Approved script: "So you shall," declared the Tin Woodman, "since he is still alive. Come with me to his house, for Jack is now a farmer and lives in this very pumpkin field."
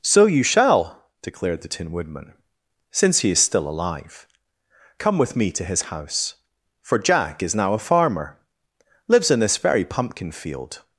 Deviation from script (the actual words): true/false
true